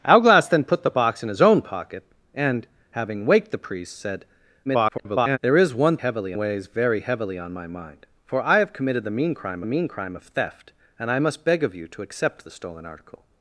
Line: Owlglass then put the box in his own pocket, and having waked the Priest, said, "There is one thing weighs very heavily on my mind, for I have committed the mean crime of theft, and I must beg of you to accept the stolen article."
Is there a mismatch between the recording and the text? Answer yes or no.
yes